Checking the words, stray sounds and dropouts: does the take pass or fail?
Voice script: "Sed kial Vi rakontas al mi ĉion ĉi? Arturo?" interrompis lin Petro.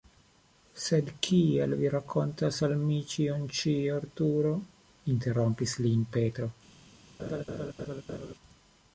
fail